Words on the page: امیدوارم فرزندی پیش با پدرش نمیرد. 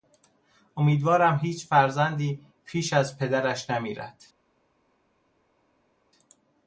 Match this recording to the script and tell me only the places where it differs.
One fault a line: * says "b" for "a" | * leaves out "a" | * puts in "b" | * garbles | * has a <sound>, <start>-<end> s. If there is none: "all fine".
* puts in "هیچ"
* says "از" for "با"